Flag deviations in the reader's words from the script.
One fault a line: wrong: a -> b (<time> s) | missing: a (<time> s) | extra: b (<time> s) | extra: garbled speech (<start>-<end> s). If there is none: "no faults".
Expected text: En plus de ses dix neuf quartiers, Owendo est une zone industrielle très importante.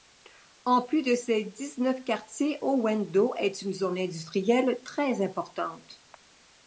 no faults